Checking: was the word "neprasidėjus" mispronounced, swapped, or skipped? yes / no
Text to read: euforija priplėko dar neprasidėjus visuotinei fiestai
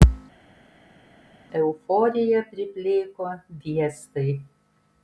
yes